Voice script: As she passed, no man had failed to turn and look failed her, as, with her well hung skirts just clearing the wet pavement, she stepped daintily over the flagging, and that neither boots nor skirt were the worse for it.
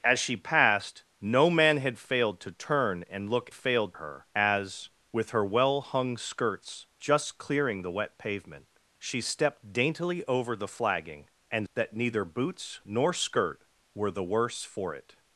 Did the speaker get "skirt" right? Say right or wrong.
right